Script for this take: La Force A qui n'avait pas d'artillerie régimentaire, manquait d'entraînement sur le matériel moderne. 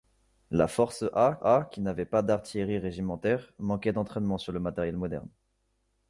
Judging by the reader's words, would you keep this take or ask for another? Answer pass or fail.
fail